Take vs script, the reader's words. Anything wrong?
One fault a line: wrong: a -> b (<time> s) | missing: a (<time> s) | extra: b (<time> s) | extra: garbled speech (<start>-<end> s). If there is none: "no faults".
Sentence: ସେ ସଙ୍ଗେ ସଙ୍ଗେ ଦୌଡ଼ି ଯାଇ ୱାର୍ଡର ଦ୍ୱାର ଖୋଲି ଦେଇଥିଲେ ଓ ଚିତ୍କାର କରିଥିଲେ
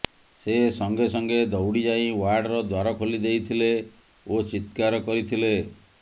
no faults